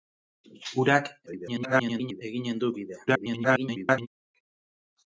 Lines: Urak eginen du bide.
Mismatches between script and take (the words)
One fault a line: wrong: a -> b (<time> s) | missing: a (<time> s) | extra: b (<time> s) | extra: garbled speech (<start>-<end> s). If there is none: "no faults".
extra: garbled speech (1.3-2.2 s)
extra: garbled speech (3.1-4.1 s)